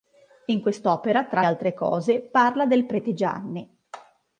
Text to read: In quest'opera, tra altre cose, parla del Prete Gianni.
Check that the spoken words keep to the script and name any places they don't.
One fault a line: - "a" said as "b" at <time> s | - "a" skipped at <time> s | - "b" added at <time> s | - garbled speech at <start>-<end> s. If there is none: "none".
none